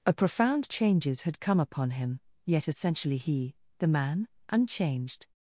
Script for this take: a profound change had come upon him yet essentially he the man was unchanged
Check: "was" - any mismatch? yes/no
yes